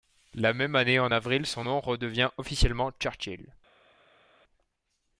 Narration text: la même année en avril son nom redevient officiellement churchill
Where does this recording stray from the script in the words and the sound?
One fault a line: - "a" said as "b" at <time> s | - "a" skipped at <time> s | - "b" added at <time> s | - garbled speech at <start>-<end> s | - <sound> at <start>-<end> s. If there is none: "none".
none